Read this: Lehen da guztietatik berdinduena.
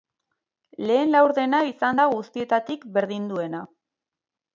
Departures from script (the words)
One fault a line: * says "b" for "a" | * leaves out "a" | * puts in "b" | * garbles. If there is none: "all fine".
* puts in "laurdena izan"